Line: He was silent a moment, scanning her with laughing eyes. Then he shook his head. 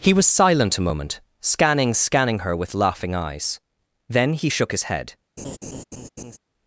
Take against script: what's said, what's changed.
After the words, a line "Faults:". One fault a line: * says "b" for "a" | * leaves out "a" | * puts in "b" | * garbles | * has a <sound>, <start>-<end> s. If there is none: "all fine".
He was silent a moment, scanning scanning her with laughing eyes. Then he shook his head.
Faults:
* puts in "scanning"
* has a laugh, 5.4-6.4 s